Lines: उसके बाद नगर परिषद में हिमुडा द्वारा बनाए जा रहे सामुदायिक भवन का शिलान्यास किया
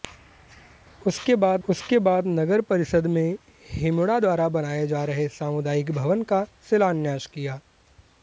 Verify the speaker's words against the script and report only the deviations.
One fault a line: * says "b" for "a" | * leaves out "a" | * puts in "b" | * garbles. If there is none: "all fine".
* puts in "उसके बाद"